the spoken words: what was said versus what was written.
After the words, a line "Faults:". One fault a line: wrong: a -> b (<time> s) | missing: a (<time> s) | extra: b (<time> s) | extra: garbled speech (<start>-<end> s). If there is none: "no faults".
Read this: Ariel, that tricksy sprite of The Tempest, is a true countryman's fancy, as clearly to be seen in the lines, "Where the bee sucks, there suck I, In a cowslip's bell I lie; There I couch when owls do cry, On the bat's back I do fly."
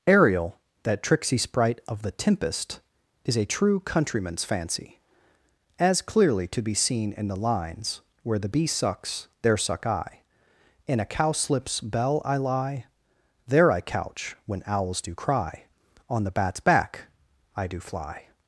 Ariel, that tricksy sprite of The Tempest, is a true countryman's fancy, as clearly to be seen in the lines, "Where the bee sucks, there suck I, In a cowslip's bell I lie; There I couch when owls do cry, On the bat's back I do fly."
Faults:
no faults